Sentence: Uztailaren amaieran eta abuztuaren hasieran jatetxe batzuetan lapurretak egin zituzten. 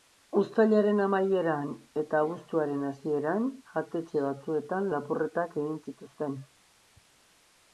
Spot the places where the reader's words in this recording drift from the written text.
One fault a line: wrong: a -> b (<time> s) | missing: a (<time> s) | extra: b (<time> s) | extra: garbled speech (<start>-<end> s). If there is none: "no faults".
no faults